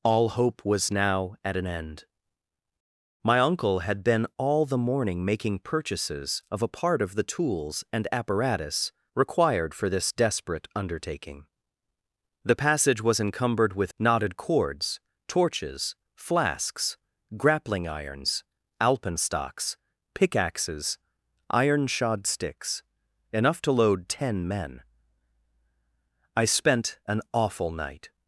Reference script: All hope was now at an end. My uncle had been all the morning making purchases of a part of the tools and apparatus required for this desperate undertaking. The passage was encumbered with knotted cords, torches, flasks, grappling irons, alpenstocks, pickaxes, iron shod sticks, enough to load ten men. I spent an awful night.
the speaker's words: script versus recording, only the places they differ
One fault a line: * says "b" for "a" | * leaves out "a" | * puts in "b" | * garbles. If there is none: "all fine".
all fine